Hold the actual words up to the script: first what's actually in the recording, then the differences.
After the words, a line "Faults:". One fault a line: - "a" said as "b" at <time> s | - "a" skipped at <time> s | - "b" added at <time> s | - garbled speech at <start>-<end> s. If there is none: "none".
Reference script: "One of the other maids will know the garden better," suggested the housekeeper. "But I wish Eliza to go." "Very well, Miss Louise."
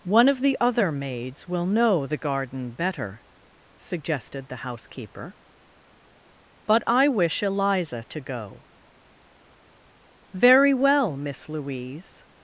"One of the other maids will know the garden better," suggested the housekeeper. "But I wish Eliza to go." "Very well, Miss Louise."
Faults:
none